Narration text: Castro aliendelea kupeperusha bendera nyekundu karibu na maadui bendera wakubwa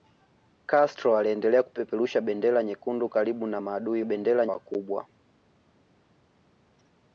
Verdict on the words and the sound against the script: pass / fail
pass